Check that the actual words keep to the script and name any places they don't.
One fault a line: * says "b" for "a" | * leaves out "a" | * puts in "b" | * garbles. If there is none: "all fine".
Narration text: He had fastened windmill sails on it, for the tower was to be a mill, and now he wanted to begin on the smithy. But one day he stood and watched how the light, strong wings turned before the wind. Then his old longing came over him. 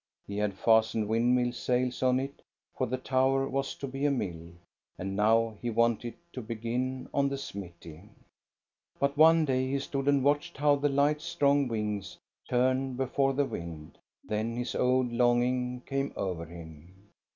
all fine